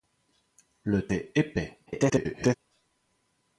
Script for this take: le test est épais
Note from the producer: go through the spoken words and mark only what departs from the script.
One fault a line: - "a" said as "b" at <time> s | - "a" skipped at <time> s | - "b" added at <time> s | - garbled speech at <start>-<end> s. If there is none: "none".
- "test" skipped at 1.1 s
- garbled speech at 1.9-2.5 s